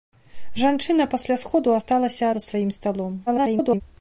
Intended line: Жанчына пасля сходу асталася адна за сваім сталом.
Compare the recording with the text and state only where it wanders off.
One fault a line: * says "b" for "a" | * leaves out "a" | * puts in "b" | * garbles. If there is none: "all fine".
* leaves out "адна"
* garbles